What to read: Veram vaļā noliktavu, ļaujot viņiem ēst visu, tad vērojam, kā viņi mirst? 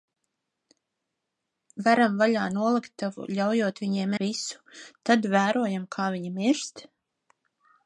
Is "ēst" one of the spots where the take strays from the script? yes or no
yes